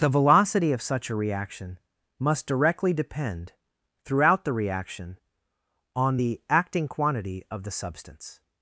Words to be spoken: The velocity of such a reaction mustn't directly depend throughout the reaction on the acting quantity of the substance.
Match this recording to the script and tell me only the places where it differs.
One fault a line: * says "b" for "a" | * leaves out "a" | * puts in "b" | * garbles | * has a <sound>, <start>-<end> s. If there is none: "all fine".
* says "must" for "mustn't"